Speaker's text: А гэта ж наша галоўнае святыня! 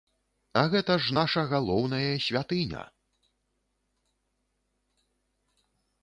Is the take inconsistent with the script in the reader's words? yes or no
no